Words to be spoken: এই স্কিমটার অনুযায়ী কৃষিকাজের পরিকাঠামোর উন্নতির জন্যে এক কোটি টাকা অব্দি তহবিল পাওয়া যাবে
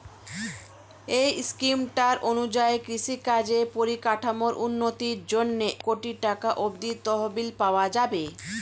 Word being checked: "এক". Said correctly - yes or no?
no